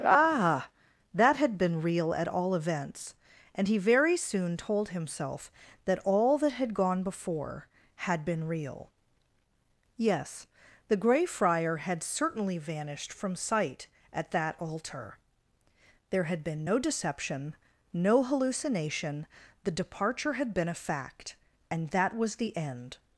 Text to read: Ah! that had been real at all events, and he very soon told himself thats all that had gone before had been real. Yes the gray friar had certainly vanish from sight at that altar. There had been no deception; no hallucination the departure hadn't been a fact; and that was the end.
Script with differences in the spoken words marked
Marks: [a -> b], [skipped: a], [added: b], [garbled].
Ah! that had been real at all events, and he very soon told himself [thats -> that] all that had gone before had been real. Yes the gray friar had certainly [vanish -> vanished] from sight at that altar. There had been no deception; no hallucination the departure [hadn't -> had] been a fact; and that was the end.